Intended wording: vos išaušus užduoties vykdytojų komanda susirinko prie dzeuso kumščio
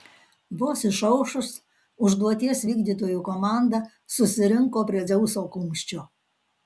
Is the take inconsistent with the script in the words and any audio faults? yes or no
no